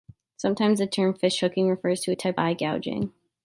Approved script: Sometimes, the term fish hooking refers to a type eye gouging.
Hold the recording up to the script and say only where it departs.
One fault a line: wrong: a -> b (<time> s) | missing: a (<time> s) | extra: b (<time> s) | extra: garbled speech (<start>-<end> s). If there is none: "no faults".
no faults